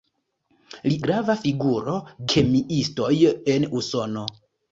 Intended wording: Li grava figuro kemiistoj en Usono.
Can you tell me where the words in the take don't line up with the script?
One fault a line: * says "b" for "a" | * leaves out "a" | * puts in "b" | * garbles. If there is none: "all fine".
all fine